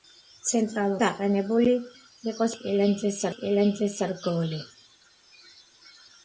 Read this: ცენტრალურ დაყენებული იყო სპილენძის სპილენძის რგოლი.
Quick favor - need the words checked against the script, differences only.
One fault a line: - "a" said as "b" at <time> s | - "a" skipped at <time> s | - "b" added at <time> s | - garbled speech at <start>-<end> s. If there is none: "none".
none